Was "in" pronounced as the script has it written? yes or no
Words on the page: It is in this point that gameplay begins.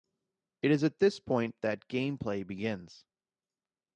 no